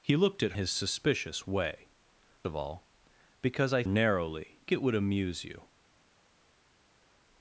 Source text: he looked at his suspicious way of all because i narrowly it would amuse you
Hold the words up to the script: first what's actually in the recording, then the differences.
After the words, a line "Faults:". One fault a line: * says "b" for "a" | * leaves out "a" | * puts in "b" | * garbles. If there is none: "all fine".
he looked at his suspicious way of all because i narrowly it would amuse you
Faults:
all fine